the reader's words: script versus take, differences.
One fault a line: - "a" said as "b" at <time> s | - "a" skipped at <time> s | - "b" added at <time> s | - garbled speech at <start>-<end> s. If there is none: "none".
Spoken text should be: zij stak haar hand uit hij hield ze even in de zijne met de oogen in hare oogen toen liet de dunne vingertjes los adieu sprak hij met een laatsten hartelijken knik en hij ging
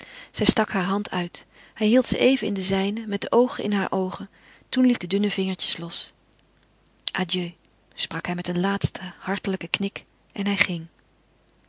none